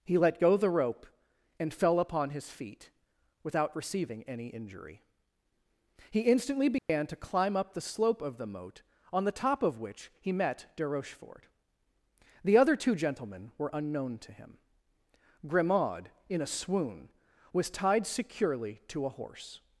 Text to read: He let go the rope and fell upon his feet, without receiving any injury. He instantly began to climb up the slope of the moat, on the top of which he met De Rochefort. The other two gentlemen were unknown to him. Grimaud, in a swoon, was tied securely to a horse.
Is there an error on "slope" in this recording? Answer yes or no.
no